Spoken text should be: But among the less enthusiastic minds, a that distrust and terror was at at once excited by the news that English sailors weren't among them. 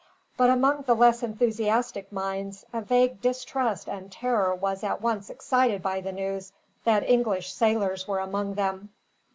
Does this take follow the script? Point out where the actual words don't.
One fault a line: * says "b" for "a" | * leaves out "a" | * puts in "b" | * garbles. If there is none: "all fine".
* says "vague" for "that"
* leaves out "at"
* says "were" for "weren't"